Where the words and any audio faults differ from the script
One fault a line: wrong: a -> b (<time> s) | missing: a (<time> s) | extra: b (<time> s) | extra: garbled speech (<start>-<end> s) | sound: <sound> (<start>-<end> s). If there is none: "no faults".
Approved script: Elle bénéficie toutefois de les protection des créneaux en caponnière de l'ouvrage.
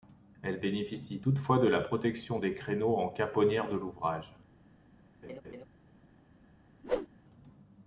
wrong: les -> la (1.7 s)
sound: laugh (5.2-5.6 s)
sound: whoosh (6.8-7.1 s)